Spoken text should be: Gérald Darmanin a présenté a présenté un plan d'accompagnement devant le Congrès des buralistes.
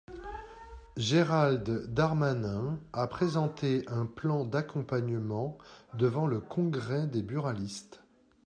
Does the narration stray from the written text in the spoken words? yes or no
yes